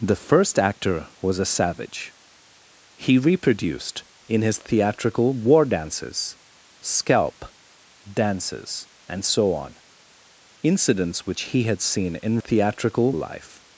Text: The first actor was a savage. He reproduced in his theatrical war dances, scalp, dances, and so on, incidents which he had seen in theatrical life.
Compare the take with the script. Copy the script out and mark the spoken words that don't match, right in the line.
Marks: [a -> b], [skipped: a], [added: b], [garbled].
The first actor was a savage. He reproduced in his theatrical war dances, scalp, dances, and so on, incidents which he had seen in theatrical life.